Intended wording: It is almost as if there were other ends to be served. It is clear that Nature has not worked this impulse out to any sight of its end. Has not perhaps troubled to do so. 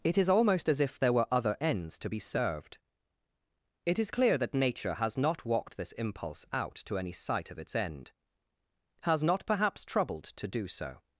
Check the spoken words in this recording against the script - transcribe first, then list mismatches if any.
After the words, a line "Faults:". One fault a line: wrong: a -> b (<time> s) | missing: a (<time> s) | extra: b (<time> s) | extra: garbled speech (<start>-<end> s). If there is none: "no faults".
It is almost as if there were other ends to be served. It is clear that Nature has not walked this impulse out to any sight of its end. Has not perhaps troubled to do so.
Faults:
wrong: worked -> walked (5.5 s)